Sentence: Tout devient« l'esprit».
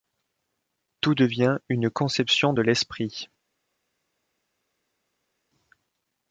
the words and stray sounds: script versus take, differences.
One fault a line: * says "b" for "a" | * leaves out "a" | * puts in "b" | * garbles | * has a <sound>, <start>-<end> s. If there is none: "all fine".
* puts in "une conception de"